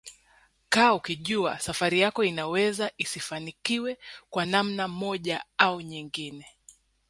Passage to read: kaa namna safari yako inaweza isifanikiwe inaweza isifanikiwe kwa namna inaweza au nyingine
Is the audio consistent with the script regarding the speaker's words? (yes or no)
no